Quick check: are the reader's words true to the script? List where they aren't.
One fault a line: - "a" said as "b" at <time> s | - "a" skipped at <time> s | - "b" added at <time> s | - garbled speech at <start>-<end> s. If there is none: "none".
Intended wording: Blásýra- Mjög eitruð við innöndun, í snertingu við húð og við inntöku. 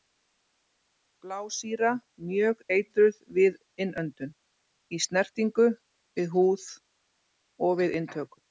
none